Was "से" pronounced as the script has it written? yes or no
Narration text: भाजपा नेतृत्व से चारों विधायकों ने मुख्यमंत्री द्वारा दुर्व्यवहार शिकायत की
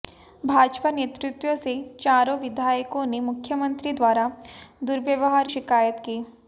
yes